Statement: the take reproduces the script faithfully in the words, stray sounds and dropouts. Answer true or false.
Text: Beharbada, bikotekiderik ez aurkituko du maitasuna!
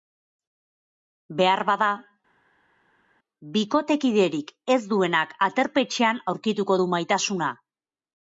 false